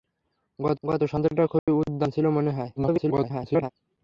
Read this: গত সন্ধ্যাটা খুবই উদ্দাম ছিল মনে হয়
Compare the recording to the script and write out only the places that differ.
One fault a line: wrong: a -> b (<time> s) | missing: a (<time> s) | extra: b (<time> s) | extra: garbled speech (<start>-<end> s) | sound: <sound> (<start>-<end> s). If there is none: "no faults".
extra: গত (0.8 s)
sound: dropout (1.6-1.7 s)
extra: garbled speech (2.8-3.7 s)